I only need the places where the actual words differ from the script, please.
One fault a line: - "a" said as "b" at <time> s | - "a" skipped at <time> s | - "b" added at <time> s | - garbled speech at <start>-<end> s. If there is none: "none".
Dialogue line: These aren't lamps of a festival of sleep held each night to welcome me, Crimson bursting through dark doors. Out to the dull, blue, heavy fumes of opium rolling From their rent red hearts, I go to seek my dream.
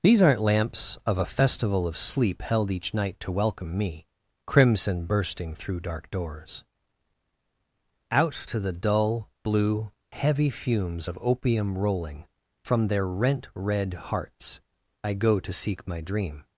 none